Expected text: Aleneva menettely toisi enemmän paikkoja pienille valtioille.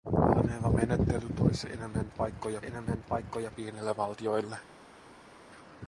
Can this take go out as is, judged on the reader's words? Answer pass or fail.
fail